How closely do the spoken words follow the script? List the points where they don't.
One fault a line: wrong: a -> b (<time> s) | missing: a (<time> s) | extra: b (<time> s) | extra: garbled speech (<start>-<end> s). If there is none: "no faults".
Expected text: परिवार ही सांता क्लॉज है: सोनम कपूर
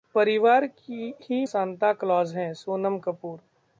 no faults